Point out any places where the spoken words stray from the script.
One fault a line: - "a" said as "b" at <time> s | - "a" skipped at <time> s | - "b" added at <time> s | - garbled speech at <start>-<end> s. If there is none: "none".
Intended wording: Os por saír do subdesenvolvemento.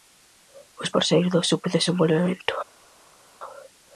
none